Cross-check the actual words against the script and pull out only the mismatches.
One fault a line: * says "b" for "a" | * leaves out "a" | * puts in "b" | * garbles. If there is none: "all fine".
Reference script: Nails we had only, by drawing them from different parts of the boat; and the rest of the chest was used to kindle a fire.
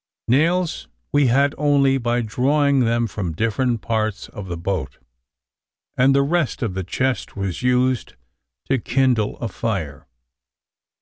all fine